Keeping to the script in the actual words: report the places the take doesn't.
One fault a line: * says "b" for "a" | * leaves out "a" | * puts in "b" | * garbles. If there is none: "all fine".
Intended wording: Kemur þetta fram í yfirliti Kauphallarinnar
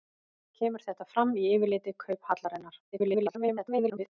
* garbles